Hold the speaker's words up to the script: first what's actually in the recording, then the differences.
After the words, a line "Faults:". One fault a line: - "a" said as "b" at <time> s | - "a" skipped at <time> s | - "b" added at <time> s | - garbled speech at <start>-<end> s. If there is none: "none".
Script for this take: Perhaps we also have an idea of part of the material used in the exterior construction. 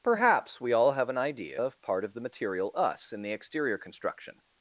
Perhaps we all have an idea of part of the material us in the exterior construction.
Faults:
- "also" said as "all" at 0.7 s
- "used" said as "us" at 2.7 s